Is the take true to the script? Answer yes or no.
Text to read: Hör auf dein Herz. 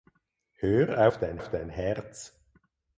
no